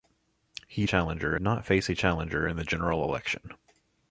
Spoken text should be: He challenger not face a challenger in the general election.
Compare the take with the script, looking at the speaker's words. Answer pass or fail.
pass